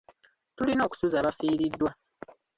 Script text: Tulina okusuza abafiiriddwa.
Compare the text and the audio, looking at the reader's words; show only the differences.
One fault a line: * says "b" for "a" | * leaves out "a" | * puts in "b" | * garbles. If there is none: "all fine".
all fine